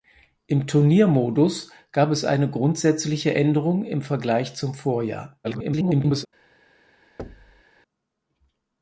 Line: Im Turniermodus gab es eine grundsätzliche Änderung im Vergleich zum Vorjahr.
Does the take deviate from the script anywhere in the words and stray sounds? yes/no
yes